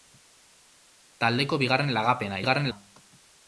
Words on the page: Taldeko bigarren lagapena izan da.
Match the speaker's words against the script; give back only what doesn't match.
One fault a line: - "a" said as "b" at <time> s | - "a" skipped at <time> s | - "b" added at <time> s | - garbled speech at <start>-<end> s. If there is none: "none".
- "izan" said as "bigarren" at 2.4 s